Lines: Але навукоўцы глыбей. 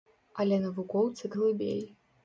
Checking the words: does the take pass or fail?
pass